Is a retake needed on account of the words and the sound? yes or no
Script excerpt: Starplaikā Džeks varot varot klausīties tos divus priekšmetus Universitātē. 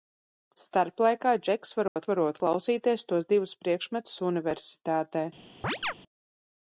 yes